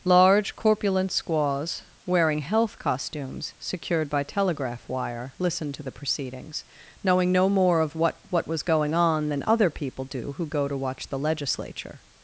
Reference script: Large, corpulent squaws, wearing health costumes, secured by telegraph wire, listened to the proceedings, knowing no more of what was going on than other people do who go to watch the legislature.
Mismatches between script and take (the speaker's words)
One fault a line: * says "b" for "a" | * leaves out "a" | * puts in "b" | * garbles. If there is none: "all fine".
* puts in "what"